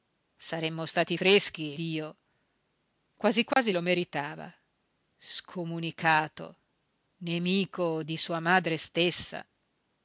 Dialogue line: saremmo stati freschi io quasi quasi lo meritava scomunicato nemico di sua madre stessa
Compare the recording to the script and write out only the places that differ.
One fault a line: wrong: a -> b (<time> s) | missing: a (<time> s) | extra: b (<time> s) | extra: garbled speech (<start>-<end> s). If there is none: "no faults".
no faults